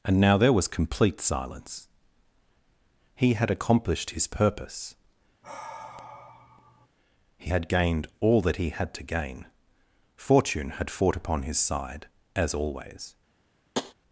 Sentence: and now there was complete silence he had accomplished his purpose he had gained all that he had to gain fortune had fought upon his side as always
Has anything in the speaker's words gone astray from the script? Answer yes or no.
no